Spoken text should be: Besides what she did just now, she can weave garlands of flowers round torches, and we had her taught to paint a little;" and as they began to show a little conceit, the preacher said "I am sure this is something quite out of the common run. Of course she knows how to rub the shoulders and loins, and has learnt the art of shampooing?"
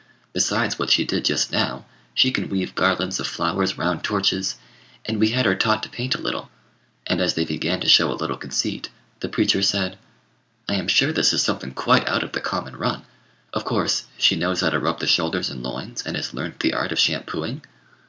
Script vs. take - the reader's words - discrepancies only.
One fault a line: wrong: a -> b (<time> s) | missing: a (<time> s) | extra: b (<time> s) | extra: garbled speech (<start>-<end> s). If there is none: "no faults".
no faults